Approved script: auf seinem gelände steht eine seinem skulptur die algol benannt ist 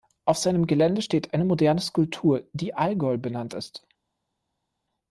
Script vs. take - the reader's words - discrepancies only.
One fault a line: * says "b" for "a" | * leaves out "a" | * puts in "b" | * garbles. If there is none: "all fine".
* says "moderne" for "seinem"